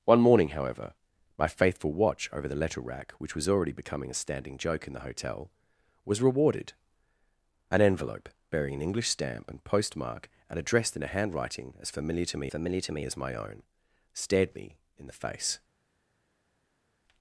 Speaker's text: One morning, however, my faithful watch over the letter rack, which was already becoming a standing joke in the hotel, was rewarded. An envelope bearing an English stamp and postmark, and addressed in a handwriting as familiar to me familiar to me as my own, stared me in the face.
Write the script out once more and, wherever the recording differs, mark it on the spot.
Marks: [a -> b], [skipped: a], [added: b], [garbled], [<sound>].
One morning, however, my faithful watch over the letter rack, which was already becoming a standing joke in the hotel, was rewarded. An envelope bearing an English stamp and postmark, and addressed in a handwriting as familiar to me familiar to me as my own, stared me in the face.